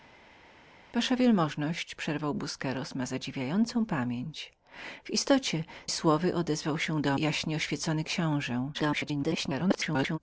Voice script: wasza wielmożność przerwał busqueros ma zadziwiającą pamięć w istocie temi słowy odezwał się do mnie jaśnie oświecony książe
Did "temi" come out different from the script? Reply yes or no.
yes